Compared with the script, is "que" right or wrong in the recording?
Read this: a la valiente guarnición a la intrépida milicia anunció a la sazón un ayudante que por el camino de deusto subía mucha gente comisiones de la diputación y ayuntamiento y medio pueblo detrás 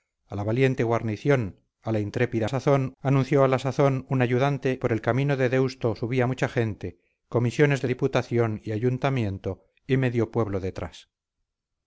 wrong